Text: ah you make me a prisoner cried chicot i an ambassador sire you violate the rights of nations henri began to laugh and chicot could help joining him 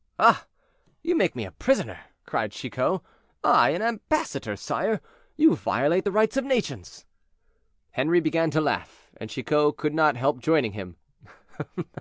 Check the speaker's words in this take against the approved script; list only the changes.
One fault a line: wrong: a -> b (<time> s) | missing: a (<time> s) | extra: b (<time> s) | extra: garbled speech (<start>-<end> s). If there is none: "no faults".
extra: not (9.9 s)